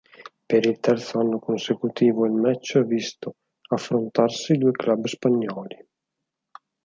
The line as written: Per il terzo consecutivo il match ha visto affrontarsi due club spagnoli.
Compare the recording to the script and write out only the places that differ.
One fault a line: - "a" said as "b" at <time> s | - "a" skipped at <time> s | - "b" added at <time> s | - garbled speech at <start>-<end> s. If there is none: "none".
- "anno" added at 1.2 s